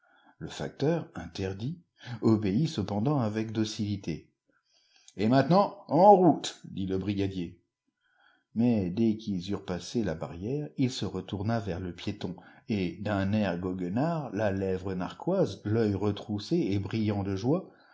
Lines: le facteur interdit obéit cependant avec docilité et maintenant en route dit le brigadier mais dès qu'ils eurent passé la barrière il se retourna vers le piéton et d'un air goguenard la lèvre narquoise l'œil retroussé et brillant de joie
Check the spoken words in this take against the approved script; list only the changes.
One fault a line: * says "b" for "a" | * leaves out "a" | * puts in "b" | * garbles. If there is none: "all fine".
all fine